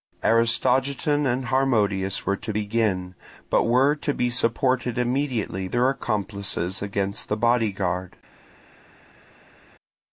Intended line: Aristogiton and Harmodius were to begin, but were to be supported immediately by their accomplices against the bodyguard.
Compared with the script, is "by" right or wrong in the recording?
wrong